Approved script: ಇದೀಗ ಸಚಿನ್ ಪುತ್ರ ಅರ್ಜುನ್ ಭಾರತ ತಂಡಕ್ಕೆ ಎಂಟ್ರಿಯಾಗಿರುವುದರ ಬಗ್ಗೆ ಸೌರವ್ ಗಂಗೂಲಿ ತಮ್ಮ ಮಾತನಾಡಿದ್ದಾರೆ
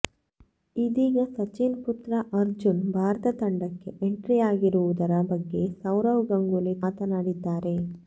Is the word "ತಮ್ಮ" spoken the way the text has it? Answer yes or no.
no